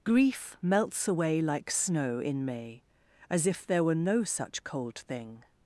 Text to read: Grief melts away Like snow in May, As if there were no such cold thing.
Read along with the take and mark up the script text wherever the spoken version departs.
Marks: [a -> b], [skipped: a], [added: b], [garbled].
Grief melts away Like snow in May, As if there were no such cold thing.